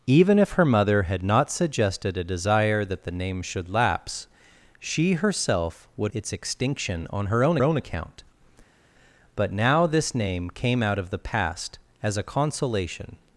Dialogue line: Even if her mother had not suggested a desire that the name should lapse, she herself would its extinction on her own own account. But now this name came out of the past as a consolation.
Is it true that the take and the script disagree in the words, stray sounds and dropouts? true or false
false